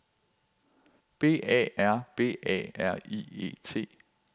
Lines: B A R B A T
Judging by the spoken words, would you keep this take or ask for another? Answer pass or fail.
fail